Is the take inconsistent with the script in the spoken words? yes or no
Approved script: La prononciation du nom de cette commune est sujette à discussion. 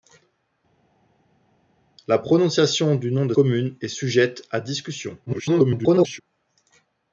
yes